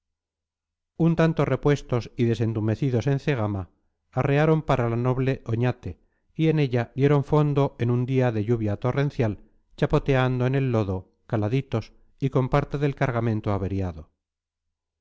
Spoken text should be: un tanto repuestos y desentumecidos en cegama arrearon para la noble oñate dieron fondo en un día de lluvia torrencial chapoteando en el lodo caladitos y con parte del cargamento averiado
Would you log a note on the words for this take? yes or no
yes